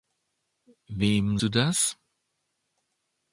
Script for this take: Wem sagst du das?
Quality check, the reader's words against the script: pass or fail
fail